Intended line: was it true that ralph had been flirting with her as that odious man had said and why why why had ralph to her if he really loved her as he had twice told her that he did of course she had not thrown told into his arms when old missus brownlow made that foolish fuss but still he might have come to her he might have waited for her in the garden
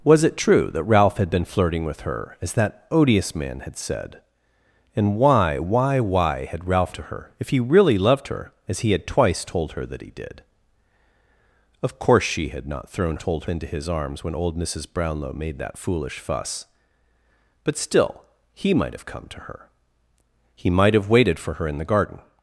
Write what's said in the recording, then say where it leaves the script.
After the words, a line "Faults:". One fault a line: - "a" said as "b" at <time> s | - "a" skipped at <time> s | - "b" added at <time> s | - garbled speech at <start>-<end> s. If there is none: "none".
was it true that ralph had been flirting with her as that odious man had said and why why why had ralph to her if he really loved her as he had twice told her that he did of course she had not thrown told into his arms when old missus brownlow made that foolish fuss but still he might have come to her he might have waited for her in the garden
Faults:
none